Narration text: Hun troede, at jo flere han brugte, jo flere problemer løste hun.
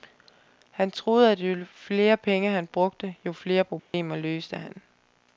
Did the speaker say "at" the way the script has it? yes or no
yes